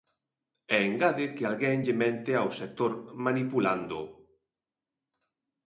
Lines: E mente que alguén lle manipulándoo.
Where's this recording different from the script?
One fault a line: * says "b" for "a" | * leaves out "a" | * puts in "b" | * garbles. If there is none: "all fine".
* says "engade" for "mente"
* puts in "mente ao sector"